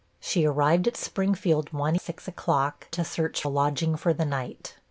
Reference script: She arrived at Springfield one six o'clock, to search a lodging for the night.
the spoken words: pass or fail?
pass